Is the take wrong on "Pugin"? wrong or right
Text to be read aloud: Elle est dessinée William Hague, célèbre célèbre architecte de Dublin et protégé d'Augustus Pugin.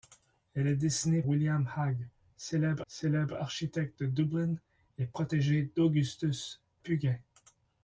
right